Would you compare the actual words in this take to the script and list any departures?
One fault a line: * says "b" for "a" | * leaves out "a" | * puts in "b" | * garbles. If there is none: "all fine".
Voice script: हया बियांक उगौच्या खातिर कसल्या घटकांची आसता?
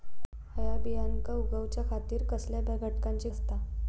all fine